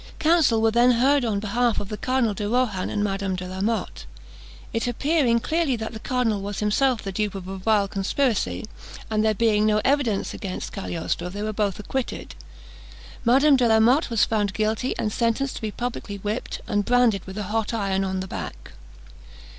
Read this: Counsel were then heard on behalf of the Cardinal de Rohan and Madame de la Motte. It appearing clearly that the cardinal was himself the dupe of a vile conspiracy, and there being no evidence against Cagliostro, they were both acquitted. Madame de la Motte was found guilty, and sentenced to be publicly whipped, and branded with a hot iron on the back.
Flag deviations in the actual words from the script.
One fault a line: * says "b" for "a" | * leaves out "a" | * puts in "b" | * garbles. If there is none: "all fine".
all fine